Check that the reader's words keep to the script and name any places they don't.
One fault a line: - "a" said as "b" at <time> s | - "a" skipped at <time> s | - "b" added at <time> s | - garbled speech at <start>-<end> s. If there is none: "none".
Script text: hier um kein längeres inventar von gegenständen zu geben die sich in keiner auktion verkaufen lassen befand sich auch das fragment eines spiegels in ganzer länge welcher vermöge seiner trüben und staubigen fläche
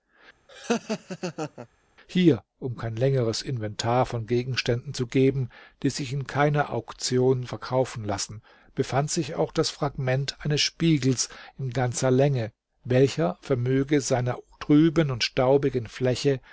none